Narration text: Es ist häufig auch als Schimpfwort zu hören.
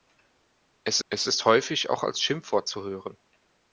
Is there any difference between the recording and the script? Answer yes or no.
yes